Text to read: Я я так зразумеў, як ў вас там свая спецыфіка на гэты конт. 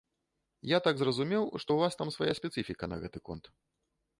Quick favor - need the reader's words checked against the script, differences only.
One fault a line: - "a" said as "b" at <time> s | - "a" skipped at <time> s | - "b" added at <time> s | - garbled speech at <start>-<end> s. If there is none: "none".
- "я" skipped at 0.8 s
- "як" said as "што" at 1.6 s